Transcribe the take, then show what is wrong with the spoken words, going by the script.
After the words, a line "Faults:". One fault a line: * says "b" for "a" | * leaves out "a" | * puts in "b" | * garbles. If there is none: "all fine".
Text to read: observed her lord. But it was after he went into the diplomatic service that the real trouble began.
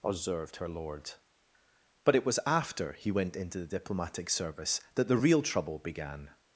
observed her lord. But it was after he went into the diplomatic service that the real trouble began.
Faults:
all fine